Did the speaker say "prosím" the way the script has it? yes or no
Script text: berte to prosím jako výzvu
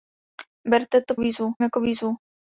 no